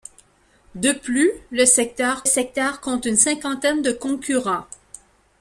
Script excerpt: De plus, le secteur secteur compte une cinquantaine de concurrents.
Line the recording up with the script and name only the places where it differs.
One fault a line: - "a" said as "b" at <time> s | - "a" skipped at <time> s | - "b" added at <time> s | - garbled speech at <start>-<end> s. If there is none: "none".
none